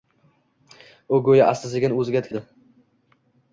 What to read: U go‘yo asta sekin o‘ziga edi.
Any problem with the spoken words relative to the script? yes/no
no